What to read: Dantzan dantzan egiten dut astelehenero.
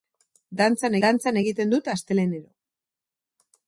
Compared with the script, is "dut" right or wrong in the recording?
right